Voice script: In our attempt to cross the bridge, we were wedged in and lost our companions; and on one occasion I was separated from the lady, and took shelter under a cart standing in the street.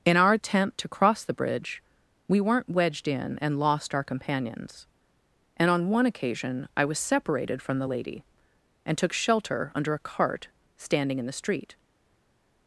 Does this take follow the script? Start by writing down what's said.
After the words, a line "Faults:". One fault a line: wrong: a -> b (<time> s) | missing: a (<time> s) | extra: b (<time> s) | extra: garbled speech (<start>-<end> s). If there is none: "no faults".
In our attempt to cross the bridge, we weren't wedged in and lost our companions; and on one occasion I was separated from the lady, and took shelter under a cart standing in the street.
Faults:
wrong: were -> weren't (2.4 s)